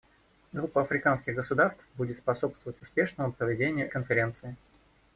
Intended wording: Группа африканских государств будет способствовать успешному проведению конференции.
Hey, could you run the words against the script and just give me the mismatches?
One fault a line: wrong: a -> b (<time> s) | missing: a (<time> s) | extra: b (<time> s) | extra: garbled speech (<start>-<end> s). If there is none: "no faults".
no faults